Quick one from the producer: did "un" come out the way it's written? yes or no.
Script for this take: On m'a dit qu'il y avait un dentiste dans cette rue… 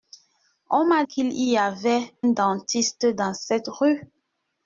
no